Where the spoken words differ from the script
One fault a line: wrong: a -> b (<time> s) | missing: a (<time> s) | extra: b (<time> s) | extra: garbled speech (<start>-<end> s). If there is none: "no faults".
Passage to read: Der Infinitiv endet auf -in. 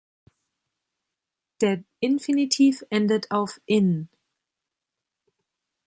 no faults